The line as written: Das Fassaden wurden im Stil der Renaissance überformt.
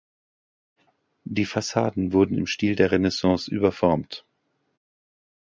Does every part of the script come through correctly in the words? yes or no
no